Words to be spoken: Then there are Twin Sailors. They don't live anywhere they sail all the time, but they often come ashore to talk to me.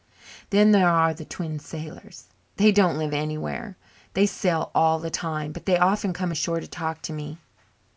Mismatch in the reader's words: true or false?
true